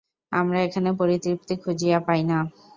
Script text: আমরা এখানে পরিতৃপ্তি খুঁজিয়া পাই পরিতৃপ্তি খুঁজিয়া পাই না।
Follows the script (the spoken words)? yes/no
no